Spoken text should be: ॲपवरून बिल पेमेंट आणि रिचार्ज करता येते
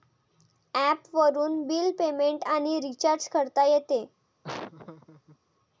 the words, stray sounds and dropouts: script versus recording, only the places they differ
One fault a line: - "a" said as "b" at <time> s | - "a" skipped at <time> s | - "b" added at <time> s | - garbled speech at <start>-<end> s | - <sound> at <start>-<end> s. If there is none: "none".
- laugh at 4.4-5.4 s